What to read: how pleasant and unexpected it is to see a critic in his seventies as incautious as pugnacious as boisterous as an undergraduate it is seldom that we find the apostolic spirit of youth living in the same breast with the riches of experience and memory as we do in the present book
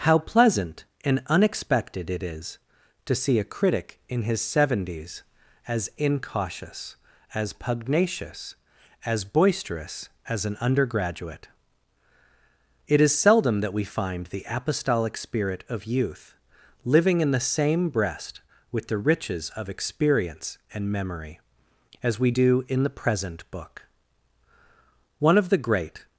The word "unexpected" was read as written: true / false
true